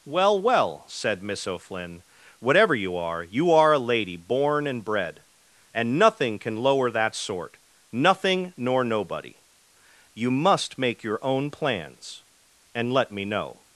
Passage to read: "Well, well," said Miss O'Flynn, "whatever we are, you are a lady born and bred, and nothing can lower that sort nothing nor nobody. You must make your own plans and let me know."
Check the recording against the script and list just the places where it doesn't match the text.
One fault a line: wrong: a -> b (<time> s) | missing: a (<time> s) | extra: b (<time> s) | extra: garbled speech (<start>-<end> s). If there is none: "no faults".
wrong: we -> you (2.7 s)